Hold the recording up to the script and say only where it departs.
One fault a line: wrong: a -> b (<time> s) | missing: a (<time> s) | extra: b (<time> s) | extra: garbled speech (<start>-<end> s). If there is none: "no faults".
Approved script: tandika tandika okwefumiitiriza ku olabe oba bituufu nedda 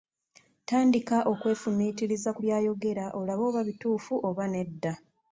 missing: tandika (1.2 s)
extra: by'ayogera (2.4 s)
extra: oba (4.3 s)